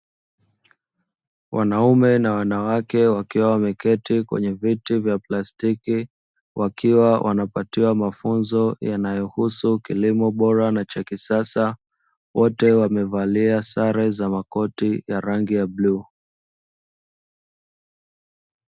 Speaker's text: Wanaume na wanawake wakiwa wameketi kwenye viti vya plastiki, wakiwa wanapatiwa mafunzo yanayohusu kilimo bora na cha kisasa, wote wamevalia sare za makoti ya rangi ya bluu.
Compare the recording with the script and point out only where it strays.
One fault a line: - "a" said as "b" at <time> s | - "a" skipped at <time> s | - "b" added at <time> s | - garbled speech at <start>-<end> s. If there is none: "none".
none